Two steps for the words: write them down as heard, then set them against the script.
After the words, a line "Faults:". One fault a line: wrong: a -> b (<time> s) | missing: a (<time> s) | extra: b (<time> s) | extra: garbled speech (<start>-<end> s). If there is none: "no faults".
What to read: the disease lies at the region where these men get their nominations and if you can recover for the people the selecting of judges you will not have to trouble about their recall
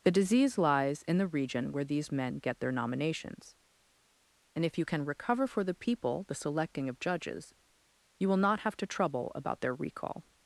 the disease lies in the region where these men get their nominations and if you can recover for the people the selecting of judges you will not have to trouble about their recall
Faults:
wrong: at -> in (1.0 s)